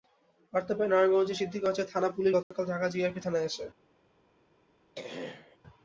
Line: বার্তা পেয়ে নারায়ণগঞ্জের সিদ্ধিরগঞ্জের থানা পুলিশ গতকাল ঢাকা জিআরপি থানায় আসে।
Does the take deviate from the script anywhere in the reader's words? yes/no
no